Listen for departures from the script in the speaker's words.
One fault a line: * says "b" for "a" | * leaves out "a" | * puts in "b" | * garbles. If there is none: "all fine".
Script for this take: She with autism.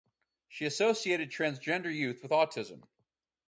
* puts in "associated transgender youth"